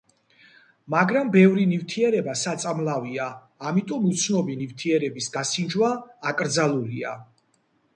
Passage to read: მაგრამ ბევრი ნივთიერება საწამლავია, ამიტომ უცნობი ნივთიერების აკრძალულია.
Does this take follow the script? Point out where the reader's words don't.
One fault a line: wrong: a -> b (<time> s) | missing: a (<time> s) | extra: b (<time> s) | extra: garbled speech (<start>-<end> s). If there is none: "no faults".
extra: გასინჯვა (5.4 s)